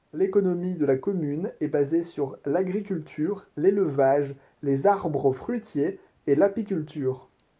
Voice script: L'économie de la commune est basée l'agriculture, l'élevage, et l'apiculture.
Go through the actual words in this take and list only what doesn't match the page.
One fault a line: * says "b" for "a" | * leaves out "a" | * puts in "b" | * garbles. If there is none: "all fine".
* puts in "sur"
* puts in "les arbres fruitiers"